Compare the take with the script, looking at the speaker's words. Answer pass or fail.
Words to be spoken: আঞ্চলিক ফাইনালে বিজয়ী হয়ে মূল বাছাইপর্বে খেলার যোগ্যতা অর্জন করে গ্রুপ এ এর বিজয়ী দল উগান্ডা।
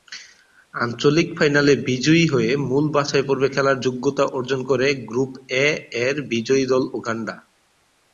pass